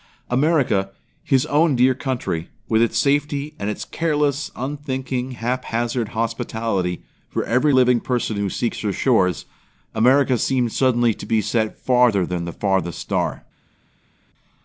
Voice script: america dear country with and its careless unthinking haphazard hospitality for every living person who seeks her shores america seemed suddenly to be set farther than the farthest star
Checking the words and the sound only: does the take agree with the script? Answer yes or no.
no